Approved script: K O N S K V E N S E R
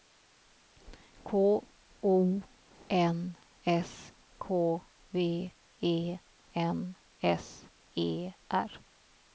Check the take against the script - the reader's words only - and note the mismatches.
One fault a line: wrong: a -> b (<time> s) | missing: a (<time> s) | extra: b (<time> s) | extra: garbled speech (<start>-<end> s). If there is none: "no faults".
no faults